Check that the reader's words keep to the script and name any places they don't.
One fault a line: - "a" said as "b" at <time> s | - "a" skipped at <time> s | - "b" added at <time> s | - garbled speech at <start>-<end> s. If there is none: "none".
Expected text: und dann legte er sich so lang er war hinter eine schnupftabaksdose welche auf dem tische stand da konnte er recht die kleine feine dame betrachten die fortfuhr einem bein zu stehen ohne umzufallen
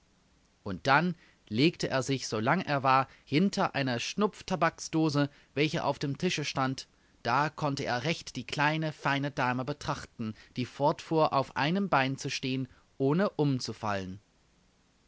- "auf" added at 11.3 s